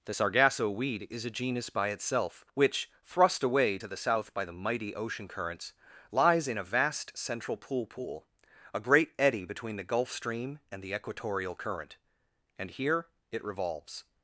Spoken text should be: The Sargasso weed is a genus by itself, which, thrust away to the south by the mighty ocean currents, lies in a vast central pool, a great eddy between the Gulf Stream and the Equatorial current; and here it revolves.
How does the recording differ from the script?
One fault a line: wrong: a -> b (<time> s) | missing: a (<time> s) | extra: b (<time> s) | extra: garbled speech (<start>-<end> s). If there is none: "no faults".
extra: pool (7.9 s)